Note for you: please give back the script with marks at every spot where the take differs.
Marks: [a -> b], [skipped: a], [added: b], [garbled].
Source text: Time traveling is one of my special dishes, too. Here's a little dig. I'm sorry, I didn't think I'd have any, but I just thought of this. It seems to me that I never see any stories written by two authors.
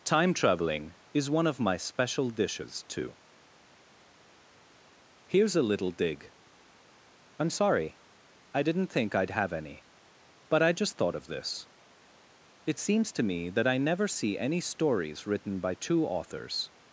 Time traveling is one of my special dishes, too. Here's a little dig. I'm sorry, I didn't think I'd have any, but I just thought of this. It seems to me that I never see any stories written by two authors.